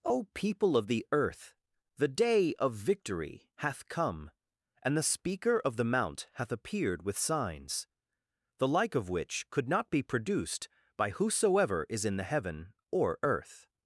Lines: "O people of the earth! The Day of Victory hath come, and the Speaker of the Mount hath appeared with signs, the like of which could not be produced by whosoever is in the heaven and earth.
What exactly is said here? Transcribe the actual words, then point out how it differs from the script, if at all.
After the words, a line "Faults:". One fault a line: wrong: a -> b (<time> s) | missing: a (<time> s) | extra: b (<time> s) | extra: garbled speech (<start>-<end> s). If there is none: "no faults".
"O people of the earth! The Day of Victory hath come, and the Speaker of the Mount hath appeared with signs, the like of which could not be produced by whosoever is in the heaven or earth.
Faults:
wrong: and -> or (12.9 s)